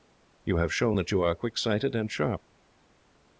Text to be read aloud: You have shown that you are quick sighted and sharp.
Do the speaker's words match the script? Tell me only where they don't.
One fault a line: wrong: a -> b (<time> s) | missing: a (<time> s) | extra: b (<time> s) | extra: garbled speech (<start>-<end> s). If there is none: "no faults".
no faults